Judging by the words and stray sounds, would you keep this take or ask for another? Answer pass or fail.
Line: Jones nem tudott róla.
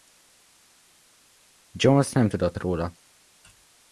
pass